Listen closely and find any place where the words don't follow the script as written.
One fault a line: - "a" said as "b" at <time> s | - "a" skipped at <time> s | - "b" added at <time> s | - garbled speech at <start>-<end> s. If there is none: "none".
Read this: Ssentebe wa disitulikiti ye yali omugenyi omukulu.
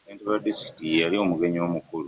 none